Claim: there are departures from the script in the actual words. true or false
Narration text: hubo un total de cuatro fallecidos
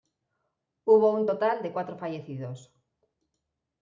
false